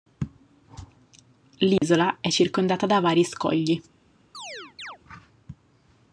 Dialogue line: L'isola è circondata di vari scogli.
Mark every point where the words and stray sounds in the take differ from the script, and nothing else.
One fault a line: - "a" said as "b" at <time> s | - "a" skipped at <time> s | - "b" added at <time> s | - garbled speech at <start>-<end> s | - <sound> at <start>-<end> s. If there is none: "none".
- dropout at 1.8-1.8 s
- "di" said as "da" at 2.9 s
- chirp at 4.3-5.0 s